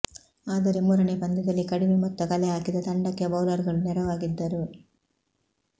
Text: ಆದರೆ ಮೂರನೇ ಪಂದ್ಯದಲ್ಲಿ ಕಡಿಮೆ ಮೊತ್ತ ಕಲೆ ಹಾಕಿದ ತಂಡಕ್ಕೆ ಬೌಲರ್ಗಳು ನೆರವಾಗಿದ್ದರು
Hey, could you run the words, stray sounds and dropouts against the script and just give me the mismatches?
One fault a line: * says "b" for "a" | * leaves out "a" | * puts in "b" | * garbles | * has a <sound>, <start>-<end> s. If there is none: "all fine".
all fine